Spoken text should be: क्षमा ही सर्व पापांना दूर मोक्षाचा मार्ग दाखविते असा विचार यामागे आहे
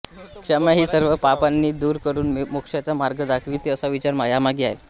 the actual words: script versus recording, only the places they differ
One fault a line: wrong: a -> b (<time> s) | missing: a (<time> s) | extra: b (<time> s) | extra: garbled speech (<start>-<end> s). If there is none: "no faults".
extra: करून (2.0 s)